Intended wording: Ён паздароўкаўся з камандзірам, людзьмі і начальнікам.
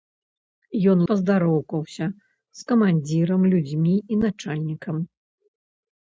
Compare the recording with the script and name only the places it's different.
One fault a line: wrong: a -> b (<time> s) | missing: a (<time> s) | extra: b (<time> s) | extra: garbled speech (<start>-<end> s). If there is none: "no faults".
no faults